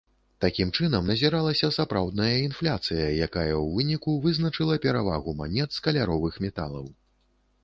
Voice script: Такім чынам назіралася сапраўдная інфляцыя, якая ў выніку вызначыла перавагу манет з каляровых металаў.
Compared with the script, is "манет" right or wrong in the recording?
right